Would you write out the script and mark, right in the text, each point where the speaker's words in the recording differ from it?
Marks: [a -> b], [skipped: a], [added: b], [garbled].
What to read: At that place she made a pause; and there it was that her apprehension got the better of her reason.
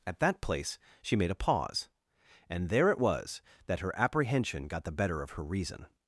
At that place she made a pause; and there it was that her apprehension got the better of her reason.